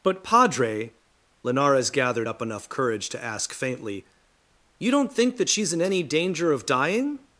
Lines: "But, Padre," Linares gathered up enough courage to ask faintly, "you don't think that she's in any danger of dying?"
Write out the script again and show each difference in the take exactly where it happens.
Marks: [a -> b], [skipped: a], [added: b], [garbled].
"But, Padre," Linares gathered up enough courage to ask faintly, "you don't think that she's in any danger of dying?"